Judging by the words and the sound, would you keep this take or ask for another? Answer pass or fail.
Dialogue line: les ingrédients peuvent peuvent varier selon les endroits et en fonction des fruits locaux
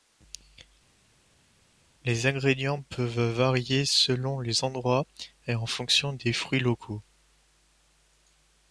fail